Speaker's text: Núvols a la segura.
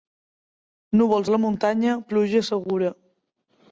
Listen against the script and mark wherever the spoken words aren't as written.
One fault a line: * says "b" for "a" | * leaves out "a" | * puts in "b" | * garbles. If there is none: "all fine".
* puts in "muntanya pluja"